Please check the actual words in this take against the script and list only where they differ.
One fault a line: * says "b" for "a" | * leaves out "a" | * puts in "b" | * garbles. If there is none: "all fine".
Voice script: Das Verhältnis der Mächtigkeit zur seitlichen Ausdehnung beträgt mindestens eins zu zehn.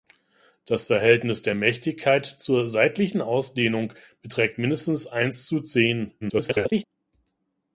* garbles